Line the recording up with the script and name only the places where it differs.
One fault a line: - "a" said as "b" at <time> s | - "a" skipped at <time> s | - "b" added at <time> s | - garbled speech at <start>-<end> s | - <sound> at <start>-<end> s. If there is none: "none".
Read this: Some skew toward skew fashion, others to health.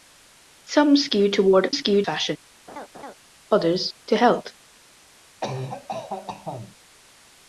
- laugh at 2.7-3.2 s
- cough at 5.4-6.8 s